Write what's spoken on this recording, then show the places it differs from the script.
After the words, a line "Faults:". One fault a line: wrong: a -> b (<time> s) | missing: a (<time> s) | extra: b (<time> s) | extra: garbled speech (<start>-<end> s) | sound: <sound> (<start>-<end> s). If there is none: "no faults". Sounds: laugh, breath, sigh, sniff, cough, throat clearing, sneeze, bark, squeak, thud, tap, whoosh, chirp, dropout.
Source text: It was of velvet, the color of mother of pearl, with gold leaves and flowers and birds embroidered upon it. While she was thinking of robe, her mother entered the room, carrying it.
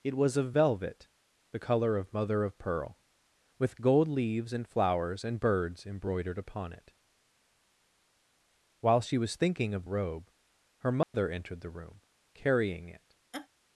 It was of velvet, the color of mother of pearl, with gold leaves and flowers and birds embroidered upon it. While she was thinking of robe, her mother entered the room, carrying it.
Faults:
sound: dropout (11.0-11.1 s)
sound: laugh (13.3-13.5 s)